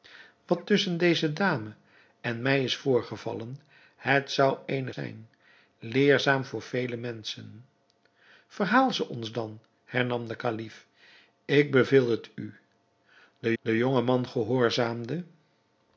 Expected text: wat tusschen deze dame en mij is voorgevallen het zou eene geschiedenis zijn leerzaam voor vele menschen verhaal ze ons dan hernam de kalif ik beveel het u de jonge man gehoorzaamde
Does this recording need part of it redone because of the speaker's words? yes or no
yes